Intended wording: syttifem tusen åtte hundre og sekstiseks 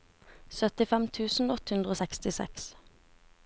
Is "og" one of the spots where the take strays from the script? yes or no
no